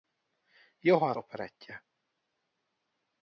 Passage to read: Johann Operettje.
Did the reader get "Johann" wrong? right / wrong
right